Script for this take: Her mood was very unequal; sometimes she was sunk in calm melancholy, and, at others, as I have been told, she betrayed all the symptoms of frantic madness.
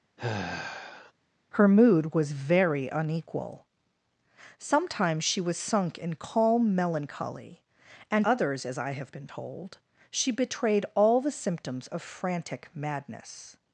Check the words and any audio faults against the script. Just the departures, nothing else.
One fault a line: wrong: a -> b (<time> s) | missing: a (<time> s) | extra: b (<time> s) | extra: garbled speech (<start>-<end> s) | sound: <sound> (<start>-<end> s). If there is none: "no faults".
sound: sigh (0.2-1.1 s)
missing: at (8.3 s)